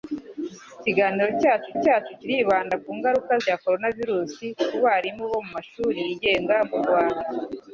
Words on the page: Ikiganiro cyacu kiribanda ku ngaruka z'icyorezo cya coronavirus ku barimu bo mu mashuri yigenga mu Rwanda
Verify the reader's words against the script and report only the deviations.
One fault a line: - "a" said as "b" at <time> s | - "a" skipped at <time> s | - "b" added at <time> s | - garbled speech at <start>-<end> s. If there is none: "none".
- "cyacu" added at 1.8 s
- "z'icyorezo" skipped at 3.3 s